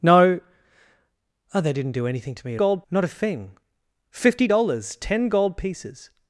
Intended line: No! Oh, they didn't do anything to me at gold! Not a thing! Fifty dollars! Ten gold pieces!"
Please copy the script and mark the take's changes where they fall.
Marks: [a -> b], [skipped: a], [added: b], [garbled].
No! Oh, they didn't do anything to me at gold! Not a thing! Fifty dollars! Ten gold pieces!"